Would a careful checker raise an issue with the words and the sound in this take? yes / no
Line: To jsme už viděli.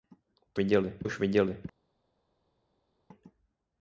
yes